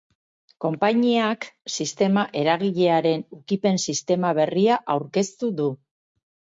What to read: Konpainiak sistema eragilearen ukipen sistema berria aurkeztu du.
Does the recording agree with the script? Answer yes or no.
yes